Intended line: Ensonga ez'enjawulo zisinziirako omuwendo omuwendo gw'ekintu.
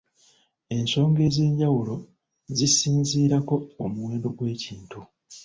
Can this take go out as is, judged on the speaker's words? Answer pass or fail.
fail